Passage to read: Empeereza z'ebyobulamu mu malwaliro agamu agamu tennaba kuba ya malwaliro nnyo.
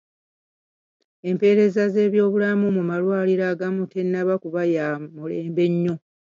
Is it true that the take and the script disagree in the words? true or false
true